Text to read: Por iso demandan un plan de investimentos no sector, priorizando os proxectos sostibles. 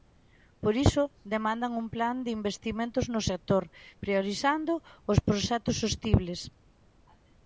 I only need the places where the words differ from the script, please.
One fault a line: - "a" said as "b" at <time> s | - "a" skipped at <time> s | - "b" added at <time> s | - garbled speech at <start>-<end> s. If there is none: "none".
none